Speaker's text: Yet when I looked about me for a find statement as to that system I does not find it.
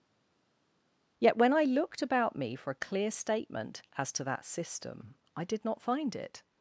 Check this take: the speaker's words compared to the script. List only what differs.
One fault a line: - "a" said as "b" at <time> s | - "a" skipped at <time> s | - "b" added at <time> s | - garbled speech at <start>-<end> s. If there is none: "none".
- "find" said as "clear" at 2.7 s
- "does" said as "did" at 5.4 s